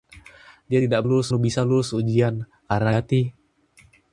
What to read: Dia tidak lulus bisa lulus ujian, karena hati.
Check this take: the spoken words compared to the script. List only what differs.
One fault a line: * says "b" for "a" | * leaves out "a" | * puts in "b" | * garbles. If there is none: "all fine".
all fine